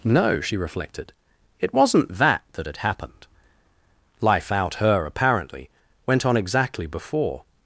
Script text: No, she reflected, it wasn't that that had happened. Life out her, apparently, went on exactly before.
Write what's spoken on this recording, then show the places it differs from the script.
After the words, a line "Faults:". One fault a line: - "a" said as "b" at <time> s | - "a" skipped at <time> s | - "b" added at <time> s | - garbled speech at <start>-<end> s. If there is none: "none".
No, she reflected, it wasn't that that had happened. Life out her, apparently, went on exactly before.
Faults:
none